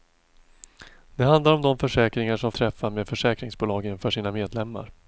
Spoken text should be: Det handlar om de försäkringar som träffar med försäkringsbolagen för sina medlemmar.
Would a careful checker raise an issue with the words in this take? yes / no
no